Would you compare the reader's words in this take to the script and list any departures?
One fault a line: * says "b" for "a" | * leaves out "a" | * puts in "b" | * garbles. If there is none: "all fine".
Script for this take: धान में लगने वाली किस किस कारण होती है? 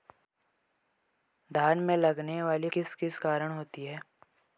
all fine